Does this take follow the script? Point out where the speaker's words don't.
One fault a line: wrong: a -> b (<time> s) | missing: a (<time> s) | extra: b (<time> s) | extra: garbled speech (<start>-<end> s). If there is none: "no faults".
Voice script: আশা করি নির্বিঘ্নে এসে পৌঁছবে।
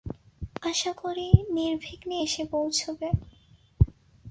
no faults